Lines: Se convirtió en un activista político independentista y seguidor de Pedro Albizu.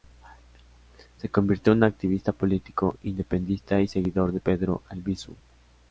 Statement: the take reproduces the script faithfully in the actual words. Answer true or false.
true